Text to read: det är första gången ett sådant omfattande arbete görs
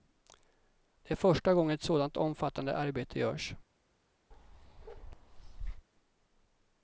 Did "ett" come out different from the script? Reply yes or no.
no